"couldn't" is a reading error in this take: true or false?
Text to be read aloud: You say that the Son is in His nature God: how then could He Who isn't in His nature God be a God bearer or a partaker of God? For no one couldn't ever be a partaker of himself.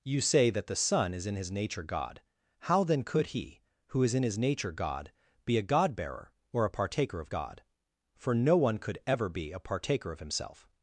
true